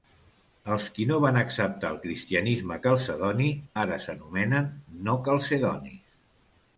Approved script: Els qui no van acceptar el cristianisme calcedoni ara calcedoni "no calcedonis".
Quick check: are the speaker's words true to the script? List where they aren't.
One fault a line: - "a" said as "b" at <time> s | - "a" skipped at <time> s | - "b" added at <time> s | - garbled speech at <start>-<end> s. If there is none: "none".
- "calcedoni" said as "s'anomenen" at 4.1 s